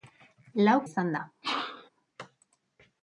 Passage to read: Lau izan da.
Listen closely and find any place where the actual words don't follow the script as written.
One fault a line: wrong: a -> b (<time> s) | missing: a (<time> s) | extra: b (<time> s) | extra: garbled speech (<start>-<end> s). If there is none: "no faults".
no faults